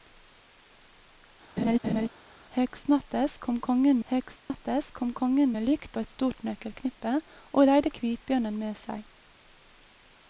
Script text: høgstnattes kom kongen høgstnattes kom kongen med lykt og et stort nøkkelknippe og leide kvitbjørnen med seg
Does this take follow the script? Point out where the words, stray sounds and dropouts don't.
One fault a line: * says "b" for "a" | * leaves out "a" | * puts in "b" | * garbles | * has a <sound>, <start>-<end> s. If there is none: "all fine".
* has a laugh, 1.6-2.1 s
* has a dropout, 4.4-4.5 s